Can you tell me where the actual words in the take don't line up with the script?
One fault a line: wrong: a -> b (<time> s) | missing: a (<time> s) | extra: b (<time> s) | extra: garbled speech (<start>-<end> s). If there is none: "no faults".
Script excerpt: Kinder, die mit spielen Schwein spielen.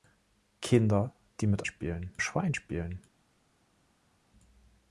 no faults